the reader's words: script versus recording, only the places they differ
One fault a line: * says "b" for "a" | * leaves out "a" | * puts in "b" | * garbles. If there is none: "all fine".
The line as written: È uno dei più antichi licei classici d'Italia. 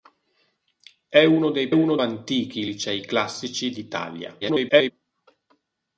* says "uno" for "più"
* garbles